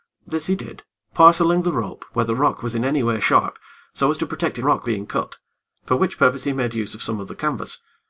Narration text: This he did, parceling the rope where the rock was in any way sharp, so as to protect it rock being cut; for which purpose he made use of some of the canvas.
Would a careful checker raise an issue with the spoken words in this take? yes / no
no